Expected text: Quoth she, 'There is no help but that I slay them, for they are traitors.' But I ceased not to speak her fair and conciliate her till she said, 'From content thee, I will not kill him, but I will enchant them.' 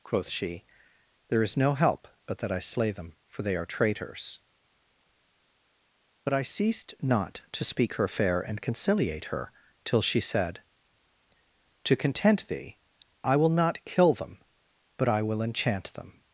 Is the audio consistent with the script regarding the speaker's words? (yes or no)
no